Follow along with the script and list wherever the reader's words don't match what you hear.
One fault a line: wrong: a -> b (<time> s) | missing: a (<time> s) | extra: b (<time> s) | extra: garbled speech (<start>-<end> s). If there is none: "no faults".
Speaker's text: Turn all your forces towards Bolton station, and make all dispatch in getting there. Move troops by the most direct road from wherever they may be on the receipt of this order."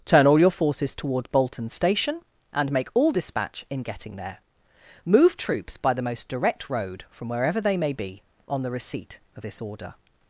wrong: towards -> toward (0.9 s)